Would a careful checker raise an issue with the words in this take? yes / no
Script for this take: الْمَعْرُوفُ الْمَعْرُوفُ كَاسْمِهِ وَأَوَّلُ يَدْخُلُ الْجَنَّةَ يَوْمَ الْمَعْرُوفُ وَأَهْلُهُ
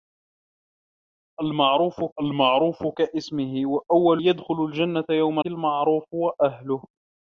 no